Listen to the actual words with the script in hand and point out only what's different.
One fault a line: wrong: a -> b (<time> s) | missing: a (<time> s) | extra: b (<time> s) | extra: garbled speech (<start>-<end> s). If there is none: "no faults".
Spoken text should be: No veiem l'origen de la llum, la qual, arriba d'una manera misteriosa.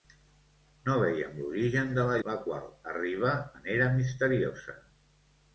missing: llum (2.2 s)
missing: d'una (3.4 s)